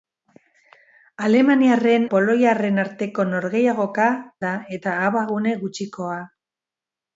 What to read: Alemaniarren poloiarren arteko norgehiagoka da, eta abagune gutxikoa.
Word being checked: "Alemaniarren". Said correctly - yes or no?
yes